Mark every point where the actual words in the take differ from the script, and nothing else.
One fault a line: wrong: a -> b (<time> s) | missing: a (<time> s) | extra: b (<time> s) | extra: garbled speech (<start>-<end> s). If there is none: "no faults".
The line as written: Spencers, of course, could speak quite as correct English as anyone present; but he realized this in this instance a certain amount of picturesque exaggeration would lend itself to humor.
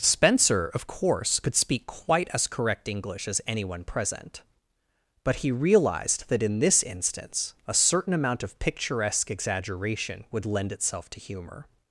wrong: Spencers -> Spencer (0.0 s)
wrong: this -> that (6.3 s)